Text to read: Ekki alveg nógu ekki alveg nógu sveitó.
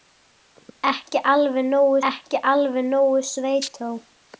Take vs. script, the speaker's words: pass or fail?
pass